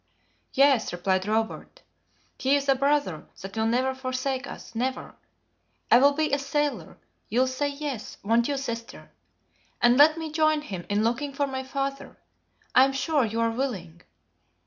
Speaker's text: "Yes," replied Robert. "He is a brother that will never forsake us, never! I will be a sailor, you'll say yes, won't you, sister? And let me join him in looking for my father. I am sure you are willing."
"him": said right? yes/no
yes